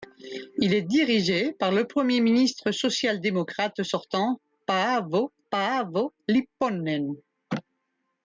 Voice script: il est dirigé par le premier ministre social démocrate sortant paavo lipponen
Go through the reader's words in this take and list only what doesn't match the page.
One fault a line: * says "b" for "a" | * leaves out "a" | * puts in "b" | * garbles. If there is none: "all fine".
* puts in "paavo"